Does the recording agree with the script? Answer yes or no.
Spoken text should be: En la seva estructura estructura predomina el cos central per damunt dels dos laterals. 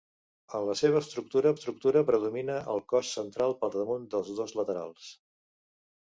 yes